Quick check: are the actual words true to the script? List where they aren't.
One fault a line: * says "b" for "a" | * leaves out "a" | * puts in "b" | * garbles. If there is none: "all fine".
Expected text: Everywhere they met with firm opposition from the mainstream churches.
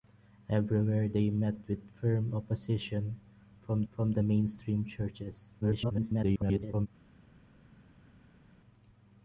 * puts in "from"
* garbles